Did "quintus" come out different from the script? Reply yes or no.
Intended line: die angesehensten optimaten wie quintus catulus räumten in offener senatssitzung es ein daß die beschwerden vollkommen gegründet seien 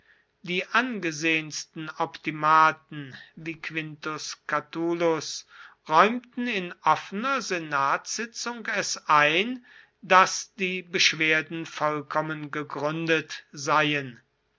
no